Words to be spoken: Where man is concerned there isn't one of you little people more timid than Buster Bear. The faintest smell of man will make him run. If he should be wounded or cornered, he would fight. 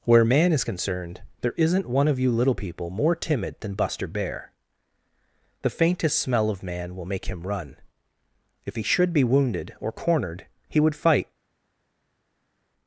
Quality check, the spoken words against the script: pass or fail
pass